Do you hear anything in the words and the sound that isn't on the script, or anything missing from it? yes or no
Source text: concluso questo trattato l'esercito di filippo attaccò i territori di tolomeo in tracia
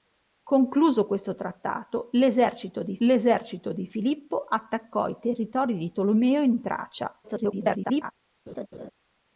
yes